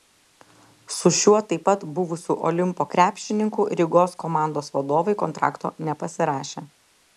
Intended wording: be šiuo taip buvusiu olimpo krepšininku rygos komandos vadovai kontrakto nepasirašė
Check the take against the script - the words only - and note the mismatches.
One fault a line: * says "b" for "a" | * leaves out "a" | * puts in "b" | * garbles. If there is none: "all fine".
* says "su" for "be"
* puts in "pat"